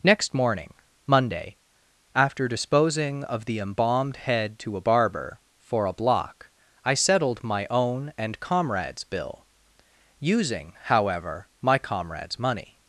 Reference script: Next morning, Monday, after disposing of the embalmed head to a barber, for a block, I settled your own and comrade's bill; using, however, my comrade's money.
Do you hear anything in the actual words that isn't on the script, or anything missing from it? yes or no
yes